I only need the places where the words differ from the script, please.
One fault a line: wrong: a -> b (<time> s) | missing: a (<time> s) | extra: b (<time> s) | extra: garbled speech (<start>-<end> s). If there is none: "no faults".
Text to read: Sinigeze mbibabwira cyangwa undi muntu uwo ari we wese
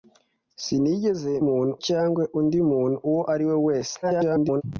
wrong: mbibabwira -> muntu (1.5 s)
extra: garbled speech (4.0-4.6 s)